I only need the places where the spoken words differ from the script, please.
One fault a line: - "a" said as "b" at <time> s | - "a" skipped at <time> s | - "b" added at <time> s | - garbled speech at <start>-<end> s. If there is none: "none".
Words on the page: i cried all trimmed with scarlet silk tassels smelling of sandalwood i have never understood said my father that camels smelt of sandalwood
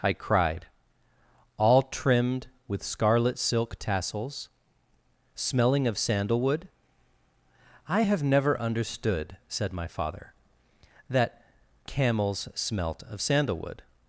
none